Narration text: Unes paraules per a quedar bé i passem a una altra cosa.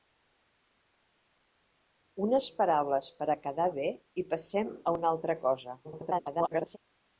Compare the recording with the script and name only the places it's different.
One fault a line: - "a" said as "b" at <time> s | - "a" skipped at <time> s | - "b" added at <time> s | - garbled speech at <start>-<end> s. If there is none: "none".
- garbled speech at 5.8-6.8 s